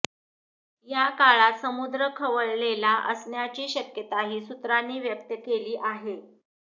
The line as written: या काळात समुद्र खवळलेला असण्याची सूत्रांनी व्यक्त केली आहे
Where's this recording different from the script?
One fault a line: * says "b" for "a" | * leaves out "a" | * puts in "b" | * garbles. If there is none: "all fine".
* puts in "शक्यताही"